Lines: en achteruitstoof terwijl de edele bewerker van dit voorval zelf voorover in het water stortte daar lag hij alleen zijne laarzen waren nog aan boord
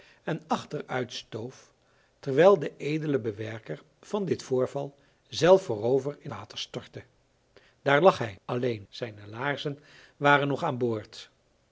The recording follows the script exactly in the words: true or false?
false